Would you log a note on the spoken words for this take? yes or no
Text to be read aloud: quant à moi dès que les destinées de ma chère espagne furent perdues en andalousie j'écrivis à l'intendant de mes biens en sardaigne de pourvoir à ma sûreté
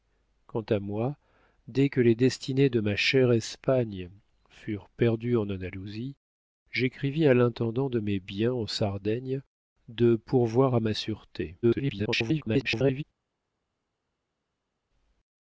yes